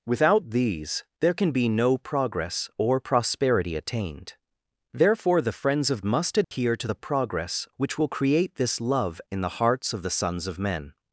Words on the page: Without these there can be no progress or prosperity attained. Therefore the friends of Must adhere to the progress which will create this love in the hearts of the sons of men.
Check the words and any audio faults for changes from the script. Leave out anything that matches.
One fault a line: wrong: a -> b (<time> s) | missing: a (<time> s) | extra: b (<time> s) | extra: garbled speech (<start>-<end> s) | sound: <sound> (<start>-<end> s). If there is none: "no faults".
sound: dropout (6.4-6.5 s)